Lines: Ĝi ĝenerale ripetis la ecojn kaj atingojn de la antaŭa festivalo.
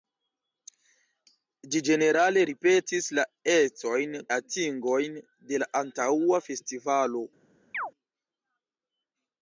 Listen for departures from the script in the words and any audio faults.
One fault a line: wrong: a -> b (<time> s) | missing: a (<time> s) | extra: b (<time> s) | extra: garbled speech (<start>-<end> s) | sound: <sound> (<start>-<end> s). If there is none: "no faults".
missing: kaj (4.2 s)
sound: chirp (7.7-7.9 s)